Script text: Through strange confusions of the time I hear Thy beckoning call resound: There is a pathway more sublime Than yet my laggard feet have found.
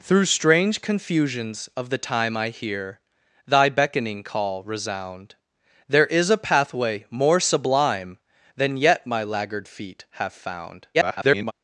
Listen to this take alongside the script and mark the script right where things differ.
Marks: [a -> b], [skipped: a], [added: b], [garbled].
Through strange confusions of the time I hear Thy beckoning call resound: There is a pathway more sublime Than yet my laggard feet have found. [garbled]